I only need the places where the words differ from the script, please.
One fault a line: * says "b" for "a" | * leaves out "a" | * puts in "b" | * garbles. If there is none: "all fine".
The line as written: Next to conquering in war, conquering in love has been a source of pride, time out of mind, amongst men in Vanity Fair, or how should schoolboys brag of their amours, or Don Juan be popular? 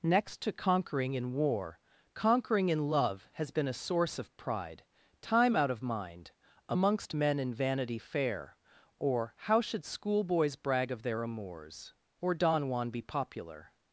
all fine